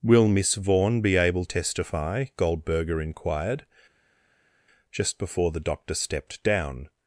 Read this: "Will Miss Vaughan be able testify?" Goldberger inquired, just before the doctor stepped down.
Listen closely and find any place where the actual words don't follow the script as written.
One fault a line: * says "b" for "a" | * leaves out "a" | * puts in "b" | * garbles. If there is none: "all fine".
all fine